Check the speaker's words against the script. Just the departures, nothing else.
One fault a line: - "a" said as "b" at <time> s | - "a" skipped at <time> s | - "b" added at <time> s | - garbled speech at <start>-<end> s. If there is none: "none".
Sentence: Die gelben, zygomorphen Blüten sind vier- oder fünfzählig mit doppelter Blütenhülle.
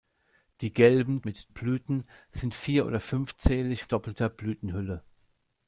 - "zygomorphen" said as "mit" at 1.2 s
- "mit" skipped at 3.9 s